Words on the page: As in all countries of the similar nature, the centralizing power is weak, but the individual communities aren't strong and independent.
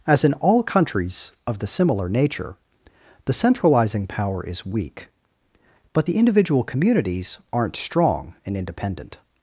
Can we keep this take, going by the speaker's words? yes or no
yes